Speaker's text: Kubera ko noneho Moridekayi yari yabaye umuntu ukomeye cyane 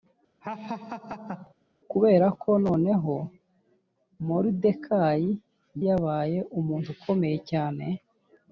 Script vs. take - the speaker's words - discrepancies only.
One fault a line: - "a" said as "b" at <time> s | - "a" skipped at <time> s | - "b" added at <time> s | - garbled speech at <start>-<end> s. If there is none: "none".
- "yari" skipped at 5.3 s